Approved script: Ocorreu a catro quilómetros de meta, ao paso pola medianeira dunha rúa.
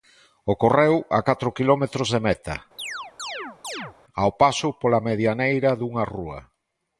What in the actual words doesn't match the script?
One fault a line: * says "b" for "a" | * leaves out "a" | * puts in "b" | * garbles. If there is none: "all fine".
all fine